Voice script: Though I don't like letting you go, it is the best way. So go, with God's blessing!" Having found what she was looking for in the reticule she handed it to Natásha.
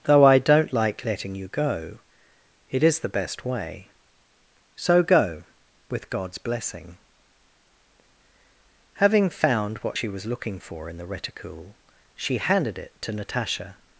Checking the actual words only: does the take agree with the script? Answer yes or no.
yes